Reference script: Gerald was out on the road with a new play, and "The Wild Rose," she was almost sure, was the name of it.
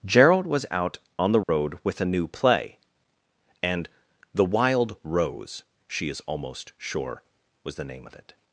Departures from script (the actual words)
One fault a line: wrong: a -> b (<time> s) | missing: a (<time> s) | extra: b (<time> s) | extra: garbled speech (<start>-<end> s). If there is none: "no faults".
wrong: was -> is (6.1 s)